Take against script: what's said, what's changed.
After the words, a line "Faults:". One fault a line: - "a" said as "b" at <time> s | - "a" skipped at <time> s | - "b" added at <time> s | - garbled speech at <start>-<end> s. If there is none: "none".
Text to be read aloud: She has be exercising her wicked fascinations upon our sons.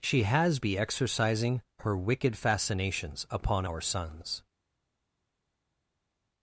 She has be exercising her wicked fascinations upon our sons.
Faults:
none